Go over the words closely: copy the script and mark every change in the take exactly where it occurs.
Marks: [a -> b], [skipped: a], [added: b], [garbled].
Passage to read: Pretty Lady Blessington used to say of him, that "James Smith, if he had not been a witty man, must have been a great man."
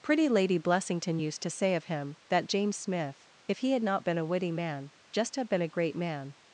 Pretty Lady Blessington used to say of him, that "James Smith, if he had not been a witty man, [must -> just] have been a great man."